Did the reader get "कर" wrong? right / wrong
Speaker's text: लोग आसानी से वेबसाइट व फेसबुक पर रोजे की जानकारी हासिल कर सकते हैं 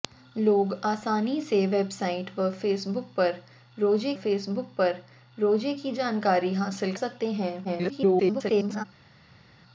wrong